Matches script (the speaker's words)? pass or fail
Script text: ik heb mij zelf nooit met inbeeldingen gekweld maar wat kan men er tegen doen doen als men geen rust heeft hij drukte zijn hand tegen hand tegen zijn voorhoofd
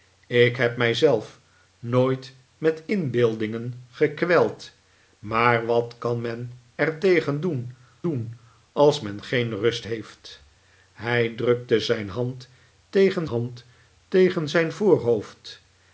pass